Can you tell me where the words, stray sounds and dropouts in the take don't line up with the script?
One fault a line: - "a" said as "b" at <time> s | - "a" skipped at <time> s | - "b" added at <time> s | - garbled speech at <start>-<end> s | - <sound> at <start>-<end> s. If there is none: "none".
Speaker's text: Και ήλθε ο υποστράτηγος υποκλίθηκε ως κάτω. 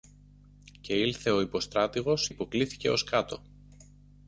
none